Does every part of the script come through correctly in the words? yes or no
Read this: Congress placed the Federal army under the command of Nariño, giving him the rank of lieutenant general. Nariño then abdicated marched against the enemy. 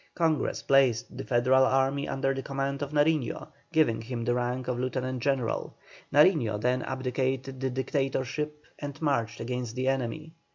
no